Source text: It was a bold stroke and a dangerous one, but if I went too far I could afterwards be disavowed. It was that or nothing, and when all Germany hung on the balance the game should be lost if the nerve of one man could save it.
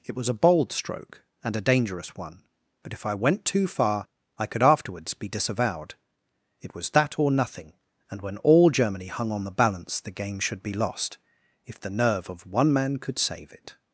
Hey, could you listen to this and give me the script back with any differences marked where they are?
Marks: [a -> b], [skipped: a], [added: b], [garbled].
It was a bold stroke and a dangerous one, but if I went too far I could afterwards be disavowed. It was that or nothing, and when all Germany hung on the balance the game should be lost if the nerve of one man could save it.